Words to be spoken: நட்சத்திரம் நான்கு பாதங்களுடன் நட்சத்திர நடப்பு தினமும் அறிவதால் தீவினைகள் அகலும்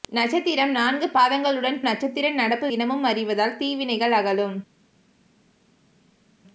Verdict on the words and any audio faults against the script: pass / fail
pass